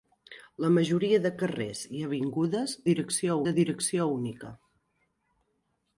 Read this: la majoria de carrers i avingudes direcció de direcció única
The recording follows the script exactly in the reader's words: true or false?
true